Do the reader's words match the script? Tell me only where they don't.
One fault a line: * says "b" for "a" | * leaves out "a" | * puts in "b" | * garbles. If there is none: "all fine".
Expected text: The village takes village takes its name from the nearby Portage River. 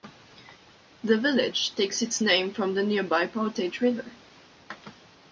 * leaves out "village takes"